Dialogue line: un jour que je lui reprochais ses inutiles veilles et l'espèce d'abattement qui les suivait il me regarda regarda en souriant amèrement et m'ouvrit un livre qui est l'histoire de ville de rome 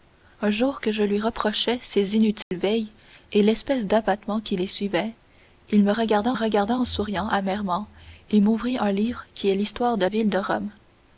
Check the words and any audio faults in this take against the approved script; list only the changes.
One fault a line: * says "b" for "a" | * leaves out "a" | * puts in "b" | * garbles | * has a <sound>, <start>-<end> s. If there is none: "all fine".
* has a dropout, 2.4-2.5 s